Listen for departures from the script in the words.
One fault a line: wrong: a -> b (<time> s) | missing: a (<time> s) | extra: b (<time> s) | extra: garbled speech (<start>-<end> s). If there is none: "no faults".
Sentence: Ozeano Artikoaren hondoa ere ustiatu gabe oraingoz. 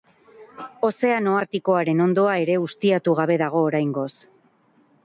extra: dago (3.5 s)